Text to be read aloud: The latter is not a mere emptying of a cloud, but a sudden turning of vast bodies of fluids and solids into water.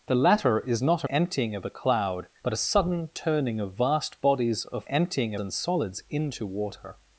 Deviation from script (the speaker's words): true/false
true